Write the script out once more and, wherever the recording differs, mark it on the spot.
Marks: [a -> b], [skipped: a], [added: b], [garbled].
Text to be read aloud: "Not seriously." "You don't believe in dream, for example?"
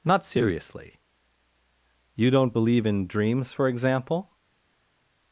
"Not seriously." "You don't believe in [dream, -> dreams] for example?"